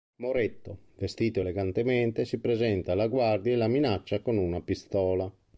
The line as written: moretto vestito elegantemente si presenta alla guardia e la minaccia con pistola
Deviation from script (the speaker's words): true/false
true